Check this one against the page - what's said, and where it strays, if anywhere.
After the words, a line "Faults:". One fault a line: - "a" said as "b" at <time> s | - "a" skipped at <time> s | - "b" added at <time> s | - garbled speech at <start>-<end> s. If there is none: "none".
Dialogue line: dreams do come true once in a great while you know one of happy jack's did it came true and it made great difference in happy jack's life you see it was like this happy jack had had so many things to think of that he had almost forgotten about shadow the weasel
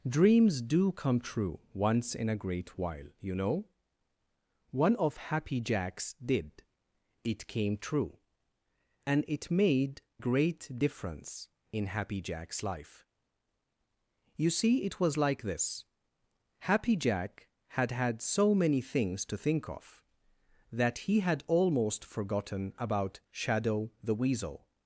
dreams do come true once in a great while you know one of happy jack's did it came true and it made great difference in happy jack's life you see it was like this happy jack had had so many things to think of that he had almost forgotten about shadow the weasel
Faults:
none